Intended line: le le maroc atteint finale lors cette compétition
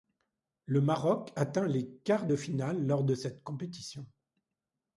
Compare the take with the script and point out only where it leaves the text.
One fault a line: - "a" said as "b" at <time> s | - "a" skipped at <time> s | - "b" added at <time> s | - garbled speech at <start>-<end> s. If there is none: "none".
- "le" skipped at 0.8 s
- "les quarts de" added at 1.7 s
- "de" added at 3.0 s